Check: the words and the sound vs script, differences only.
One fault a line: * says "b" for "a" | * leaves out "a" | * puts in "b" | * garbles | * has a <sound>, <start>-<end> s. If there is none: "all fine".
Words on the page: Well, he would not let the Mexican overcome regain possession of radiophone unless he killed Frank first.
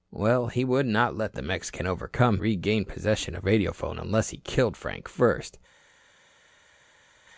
all fine